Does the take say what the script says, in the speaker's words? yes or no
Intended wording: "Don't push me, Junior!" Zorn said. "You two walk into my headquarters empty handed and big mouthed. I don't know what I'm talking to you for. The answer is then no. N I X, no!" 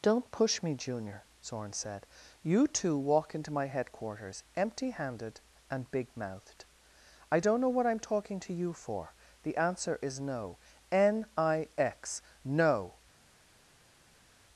no